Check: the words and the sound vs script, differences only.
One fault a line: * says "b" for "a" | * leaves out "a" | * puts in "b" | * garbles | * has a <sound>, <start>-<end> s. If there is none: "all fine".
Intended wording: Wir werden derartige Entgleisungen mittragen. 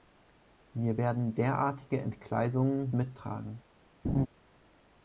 * has a laugh, 4.0-4.3 s